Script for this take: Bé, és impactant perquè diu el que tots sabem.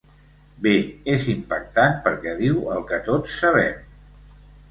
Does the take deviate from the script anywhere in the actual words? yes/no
no